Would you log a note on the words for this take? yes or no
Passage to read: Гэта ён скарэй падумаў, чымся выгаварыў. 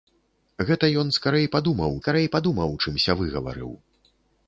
yes